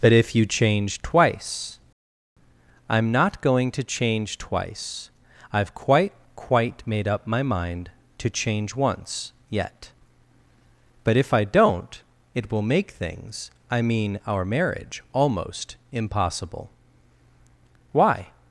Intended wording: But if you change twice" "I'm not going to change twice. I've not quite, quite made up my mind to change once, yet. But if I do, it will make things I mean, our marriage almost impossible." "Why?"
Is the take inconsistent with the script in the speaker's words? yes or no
yes